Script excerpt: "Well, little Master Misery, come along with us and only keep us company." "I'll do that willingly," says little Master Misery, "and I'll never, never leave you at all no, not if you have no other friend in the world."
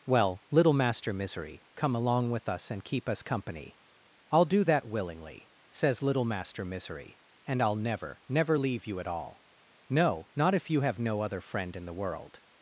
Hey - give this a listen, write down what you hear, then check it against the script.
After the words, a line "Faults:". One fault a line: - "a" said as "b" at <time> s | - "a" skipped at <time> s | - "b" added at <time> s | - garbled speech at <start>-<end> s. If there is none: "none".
"Well, little Master Misery, come along with us and keep us company." "I'll do that willingly," says little Master Misery, "and I'll never, never leave you at all no, not if you have no other friend in the world."
Faults:
- "only" skipped at 2.8 s